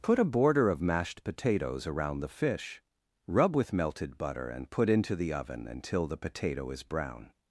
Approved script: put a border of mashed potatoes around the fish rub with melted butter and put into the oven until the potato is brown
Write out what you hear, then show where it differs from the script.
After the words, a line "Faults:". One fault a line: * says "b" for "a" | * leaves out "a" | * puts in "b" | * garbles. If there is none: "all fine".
put a border of mashed potatoes around the fish rub with melted butter and put into the oven until the potato is brown
Faults:
all fine